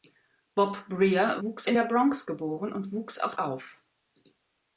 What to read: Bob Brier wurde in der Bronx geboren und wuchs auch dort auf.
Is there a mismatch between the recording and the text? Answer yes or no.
yes